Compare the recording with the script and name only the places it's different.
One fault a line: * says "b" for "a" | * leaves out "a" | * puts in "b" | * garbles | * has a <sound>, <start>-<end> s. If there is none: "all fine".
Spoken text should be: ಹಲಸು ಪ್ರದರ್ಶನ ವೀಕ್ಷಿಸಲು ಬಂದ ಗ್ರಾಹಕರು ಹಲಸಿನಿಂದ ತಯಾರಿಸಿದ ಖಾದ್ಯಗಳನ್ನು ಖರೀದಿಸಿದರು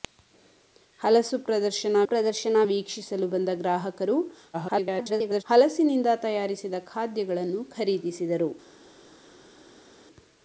* puts in "ಪ್ರದರ್ಶನ"
* garbles